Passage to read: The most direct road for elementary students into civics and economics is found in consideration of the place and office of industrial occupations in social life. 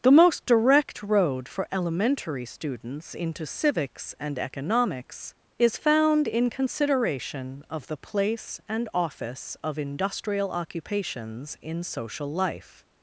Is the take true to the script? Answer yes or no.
yes